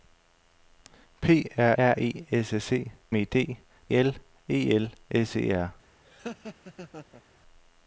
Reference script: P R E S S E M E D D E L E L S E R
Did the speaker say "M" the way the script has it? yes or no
no